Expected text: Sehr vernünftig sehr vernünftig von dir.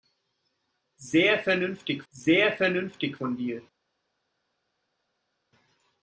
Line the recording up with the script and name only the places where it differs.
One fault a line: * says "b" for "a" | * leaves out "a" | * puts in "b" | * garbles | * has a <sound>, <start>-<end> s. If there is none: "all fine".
all fine